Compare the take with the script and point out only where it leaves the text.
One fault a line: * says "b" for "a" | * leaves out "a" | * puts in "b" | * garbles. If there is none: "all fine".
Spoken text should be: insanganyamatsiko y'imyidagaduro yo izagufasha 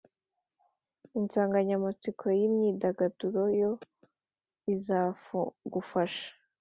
all fine